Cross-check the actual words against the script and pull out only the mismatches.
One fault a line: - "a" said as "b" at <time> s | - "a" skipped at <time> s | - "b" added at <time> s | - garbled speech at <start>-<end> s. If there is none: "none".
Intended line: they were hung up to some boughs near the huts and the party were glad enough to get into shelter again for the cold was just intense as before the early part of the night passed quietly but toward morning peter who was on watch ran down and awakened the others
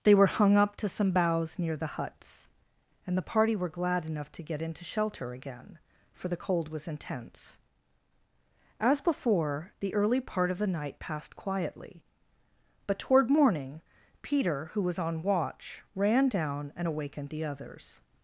- "just" skipped at 6.9 s